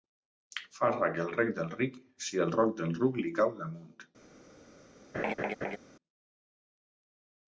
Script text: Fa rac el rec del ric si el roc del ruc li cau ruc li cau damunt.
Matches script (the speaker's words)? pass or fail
fail